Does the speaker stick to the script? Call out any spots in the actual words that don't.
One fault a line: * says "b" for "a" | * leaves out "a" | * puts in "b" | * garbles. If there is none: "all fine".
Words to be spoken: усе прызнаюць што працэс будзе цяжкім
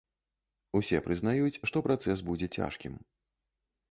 all fine